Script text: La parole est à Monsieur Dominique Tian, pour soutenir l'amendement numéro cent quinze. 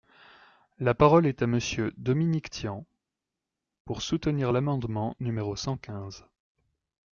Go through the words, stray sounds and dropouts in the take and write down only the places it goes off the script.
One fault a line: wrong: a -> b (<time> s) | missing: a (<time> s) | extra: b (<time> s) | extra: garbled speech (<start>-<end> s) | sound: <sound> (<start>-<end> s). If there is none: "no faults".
no faults